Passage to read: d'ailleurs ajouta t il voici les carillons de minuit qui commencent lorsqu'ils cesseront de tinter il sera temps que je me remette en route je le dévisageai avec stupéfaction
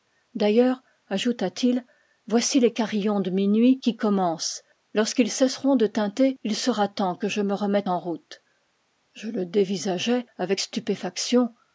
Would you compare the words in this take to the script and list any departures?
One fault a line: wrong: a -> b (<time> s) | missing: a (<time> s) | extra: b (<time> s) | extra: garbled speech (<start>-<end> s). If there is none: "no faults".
no faults